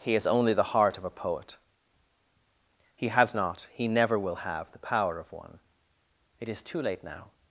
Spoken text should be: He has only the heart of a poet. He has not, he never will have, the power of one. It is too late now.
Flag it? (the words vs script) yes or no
no